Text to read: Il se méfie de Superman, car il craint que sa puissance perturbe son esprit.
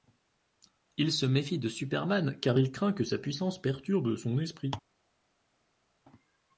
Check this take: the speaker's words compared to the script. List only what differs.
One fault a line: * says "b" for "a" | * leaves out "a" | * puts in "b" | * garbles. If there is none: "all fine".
all fine